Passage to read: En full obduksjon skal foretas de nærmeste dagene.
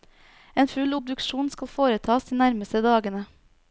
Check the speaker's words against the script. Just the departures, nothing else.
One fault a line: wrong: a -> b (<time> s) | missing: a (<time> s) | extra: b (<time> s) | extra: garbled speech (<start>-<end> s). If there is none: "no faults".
no faults